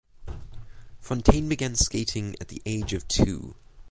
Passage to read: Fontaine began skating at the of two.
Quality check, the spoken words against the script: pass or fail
fail